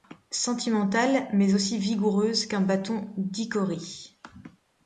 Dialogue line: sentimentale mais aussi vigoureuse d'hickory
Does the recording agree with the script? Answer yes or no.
no